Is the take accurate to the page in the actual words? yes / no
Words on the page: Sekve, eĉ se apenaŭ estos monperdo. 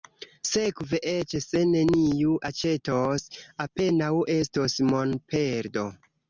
no